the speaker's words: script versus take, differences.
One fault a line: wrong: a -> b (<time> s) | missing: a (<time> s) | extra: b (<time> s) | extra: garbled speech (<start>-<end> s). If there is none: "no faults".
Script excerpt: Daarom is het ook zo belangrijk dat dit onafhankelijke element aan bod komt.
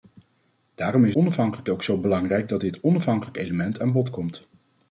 wrong: het -> onafhankelijke (1.1 s)